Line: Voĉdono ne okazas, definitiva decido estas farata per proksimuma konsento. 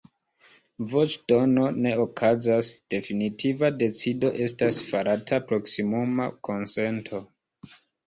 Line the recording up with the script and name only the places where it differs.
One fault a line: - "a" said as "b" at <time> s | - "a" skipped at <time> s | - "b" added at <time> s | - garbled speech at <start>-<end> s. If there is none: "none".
- "per" skipped at 5.4 s